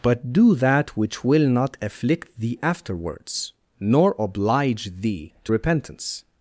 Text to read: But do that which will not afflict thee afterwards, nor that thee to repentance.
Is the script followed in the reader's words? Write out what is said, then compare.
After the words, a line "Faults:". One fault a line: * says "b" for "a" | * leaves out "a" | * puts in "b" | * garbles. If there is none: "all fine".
But do that which will not afflict thee afterwards, nor oblige thee to repentance.
Faults:
* says "oblige" for "that"